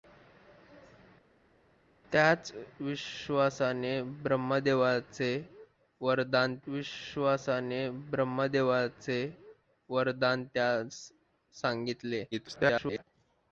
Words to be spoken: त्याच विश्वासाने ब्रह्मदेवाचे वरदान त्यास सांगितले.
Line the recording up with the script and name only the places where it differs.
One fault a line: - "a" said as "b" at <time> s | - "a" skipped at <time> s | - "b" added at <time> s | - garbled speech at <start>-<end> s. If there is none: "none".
- "विश्वासाने ब्रह्मदेवाचे वरदान" added at 6.7 s
- garbled speech at 12.3-13.0 s